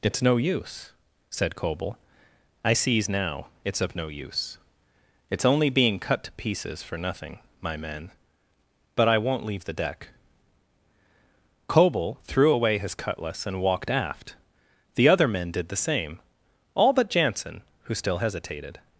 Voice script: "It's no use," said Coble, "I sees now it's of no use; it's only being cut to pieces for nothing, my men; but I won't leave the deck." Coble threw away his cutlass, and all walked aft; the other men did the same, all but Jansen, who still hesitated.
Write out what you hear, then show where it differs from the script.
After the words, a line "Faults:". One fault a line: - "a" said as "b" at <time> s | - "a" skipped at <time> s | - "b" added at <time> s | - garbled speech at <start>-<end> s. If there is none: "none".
"It's no use," said Coble, "I sees now it's of no use; it's only being cut to pieces for nothing, my men; but I won't leave the deck." Coble threw away his cutlass, and walked aft; the other men did the same, all but Jansen, who still hesitated.
Faults:
- "all" skipped at 13.6 s